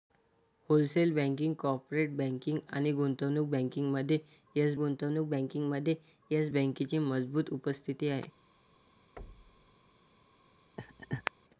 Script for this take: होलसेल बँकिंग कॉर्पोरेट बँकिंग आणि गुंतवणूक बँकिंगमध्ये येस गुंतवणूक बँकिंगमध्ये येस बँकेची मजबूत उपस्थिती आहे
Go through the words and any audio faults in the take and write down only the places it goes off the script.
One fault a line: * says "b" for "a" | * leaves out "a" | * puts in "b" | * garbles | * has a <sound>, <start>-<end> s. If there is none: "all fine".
* has a thud, 9.2-9.8 s
* has a laugh, 10.8-11.3 s